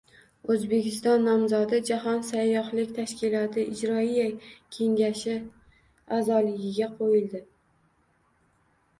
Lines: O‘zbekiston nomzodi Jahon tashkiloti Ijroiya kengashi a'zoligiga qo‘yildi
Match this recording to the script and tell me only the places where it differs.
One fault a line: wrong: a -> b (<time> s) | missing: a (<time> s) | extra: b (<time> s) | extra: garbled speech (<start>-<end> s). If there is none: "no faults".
extra: sayyohlik (2.3 s)